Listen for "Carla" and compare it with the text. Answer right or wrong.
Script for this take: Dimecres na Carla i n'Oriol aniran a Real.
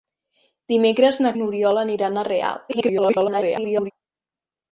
wrong